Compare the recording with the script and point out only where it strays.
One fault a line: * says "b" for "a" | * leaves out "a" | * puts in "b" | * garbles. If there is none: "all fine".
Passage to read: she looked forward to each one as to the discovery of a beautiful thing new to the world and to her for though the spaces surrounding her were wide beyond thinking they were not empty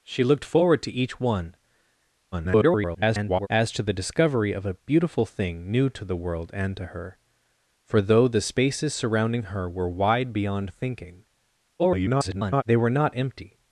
* garbles
* garbles